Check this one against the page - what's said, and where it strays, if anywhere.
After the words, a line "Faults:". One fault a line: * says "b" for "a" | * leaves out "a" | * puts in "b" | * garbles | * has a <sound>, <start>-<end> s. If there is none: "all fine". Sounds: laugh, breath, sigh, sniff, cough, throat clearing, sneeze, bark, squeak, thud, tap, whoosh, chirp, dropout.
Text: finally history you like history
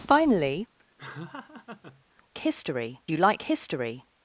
finally history you like history
Faults:
* has a laugh, 1.0-2.0 s